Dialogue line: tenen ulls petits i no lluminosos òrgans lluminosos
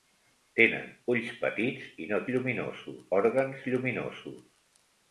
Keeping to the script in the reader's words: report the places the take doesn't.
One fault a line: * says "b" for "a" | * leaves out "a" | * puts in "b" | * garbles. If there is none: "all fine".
all fine